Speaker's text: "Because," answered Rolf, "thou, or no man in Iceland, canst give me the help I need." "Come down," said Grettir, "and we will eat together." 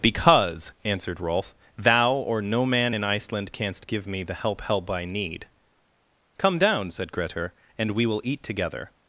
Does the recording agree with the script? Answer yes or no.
no